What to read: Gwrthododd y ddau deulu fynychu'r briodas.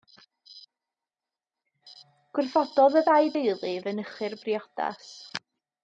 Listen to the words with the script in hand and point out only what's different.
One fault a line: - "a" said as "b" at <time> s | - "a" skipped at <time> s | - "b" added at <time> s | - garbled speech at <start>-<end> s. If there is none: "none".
none